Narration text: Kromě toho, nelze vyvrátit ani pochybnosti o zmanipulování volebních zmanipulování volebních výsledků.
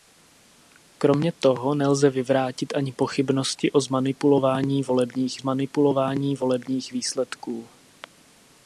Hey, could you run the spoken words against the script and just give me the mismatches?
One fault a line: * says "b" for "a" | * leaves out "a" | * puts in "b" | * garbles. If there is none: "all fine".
all fine